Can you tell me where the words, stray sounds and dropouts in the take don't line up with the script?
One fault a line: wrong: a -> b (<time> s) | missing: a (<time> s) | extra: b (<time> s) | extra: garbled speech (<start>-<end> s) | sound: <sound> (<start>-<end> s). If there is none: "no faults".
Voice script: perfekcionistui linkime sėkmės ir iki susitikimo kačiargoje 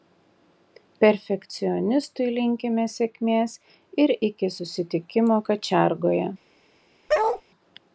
sound: bark (7.1-7.4 s)